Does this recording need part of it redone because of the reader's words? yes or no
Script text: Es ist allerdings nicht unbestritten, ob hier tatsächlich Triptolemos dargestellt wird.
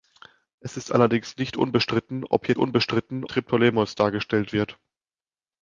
yes